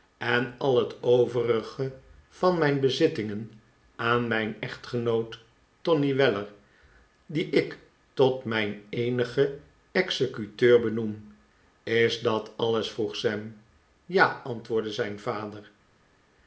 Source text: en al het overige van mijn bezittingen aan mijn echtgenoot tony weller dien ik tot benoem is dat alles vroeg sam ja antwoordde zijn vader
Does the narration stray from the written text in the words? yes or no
yes